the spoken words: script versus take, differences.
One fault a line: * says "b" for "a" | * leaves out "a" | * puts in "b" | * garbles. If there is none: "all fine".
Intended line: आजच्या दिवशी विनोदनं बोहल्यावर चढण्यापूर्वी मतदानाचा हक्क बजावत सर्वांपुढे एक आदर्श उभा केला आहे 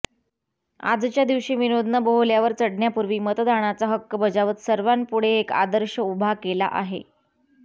all fine